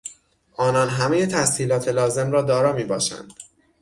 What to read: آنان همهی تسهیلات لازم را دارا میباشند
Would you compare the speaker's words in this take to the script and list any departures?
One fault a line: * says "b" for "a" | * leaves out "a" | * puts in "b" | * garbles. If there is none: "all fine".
all fine